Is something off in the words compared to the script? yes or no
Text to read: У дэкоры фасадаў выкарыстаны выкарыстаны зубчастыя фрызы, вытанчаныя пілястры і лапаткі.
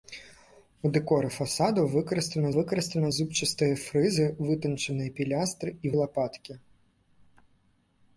no